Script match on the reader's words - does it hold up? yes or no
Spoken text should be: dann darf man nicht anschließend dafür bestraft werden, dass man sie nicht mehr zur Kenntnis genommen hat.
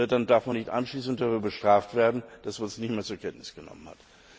no